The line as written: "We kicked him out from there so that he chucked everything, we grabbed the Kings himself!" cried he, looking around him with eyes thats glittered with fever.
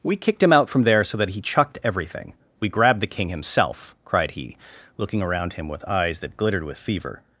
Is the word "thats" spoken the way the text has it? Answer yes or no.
no